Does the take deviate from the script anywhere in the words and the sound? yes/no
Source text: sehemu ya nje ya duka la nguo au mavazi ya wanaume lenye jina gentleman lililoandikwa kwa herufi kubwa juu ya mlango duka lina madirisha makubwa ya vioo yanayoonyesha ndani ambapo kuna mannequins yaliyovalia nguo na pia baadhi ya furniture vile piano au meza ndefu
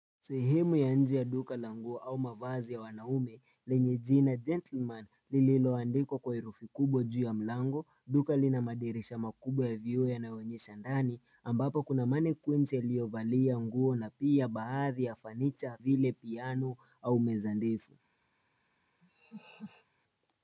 yes